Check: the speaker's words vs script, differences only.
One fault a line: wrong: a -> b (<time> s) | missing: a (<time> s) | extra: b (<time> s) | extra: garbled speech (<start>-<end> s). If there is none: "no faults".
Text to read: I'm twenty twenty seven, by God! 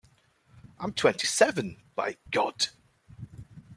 missing: twenty (1.3 s)